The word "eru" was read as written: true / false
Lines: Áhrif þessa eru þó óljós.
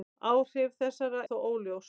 false